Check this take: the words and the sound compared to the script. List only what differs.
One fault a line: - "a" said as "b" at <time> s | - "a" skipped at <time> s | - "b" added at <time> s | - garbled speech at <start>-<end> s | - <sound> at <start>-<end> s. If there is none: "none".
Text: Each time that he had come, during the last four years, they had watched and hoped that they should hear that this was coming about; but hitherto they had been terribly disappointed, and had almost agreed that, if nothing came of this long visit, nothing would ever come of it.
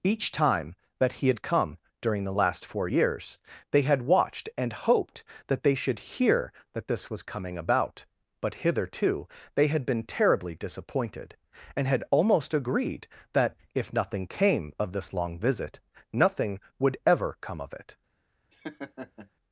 - laugh at 18.5-19.3 s